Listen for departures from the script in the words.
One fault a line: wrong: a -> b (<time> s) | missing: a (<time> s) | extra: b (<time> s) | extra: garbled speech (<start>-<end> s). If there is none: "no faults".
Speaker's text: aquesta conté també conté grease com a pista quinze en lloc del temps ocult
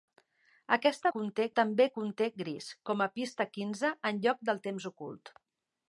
no faults